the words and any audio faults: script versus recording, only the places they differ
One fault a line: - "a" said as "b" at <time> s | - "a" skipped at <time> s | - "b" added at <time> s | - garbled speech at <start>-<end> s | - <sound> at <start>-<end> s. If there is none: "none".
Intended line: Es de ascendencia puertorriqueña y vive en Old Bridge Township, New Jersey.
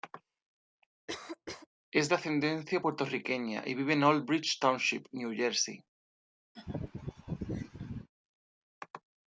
- cough at 1.1-1.7 s
- laugh at 6.5-8.1 s